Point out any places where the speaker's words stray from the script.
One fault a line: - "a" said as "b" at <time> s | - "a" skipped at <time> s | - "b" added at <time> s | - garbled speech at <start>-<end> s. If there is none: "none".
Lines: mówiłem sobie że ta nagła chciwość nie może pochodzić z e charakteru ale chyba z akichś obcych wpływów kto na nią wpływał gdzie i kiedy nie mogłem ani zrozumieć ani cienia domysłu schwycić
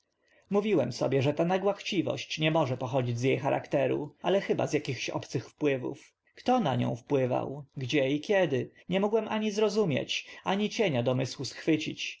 none